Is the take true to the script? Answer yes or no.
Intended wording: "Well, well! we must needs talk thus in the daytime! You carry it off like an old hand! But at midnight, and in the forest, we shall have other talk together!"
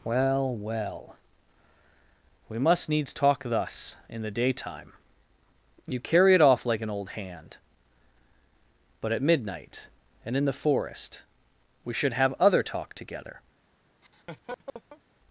no